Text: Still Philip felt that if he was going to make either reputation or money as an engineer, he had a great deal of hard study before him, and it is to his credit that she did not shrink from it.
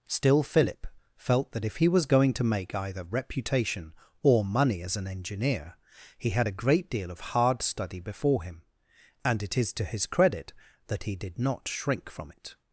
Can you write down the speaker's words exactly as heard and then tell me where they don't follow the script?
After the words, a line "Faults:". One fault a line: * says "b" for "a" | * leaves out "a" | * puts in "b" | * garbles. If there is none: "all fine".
Still Philip felt that if he was going to make either reputation or money as an engineer, he had a great deal of hard study before him, and it is to his credit that he did not shrink from it.
Faults:
* says "he" for "she"